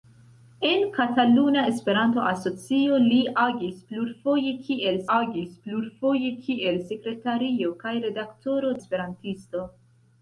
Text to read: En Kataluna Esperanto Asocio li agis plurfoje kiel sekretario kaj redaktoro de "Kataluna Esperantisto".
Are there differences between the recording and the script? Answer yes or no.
yes